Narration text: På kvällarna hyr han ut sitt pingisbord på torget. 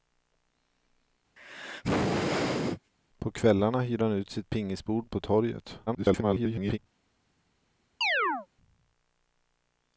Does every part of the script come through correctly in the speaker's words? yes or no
no